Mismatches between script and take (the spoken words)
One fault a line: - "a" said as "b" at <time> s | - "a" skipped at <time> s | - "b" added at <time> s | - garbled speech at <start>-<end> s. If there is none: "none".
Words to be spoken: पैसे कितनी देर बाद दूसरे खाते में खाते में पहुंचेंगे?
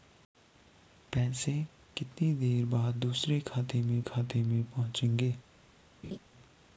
none